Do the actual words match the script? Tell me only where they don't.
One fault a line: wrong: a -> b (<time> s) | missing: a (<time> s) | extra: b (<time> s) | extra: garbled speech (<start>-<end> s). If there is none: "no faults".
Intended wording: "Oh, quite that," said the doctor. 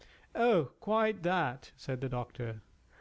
no faults